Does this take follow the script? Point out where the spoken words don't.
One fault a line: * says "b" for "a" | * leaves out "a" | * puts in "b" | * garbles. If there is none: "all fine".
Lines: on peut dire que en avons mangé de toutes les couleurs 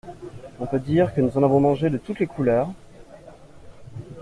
* puts in "nous"